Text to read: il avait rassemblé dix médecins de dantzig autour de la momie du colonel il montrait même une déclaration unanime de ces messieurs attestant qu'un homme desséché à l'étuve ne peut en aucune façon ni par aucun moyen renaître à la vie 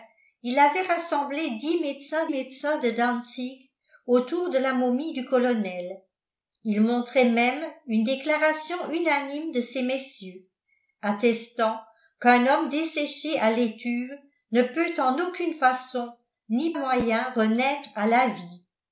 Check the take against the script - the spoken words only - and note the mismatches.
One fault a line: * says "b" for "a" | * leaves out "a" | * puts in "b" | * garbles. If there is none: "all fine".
* puts in "médecins"
* leaves out "par aucun"